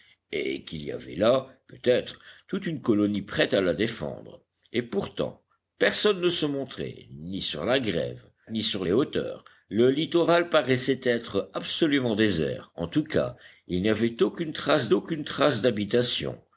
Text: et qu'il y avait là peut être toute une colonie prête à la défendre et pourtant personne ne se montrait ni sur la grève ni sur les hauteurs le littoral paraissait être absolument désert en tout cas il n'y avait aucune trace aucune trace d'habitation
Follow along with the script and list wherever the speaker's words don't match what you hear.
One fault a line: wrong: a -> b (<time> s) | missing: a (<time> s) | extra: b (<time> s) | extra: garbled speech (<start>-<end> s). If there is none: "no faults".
no faults